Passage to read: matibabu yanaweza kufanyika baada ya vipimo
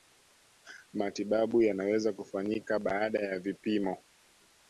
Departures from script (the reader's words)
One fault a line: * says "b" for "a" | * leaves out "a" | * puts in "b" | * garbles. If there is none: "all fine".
all fine